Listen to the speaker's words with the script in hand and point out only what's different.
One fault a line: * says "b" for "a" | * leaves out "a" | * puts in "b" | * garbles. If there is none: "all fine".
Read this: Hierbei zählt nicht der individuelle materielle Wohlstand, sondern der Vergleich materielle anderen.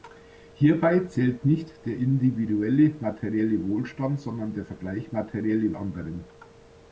all fine